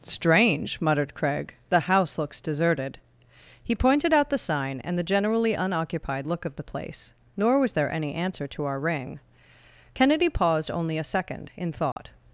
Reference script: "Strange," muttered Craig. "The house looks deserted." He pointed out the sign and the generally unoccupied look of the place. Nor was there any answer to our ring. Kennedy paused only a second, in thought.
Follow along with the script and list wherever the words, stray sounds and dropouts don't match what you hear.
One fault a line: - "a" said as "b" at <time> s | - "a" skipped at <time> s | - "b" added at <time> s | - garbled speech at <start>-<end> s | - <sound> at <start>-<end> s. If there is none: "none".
- dropout at 11.9-12.0 s